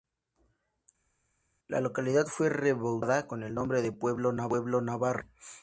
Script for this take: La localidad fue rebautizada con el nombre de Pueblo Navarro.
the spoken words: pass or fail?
pass